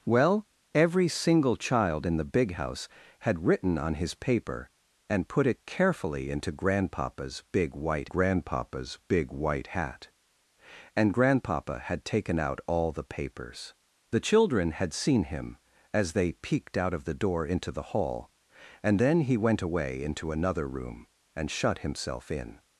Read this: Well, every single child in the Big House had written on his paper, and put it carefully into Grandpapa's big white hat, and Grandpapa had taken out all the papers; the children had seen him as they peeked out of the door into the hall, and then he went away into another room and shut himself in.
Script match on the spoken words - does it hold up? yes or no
no